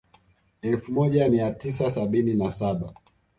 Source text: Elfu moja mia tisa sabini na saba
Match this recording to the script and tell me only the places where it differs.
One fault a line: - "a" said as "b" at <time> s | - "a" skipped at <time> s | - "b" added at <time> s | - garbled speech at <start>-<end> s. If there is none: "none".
none